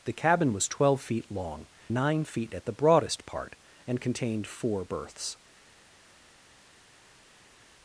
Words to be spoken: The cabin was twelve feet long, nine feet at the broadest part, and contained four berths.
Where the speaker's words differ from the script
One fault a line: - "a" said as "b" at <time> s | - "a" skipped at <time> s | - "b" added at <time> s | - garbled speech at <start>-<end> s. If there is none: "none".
none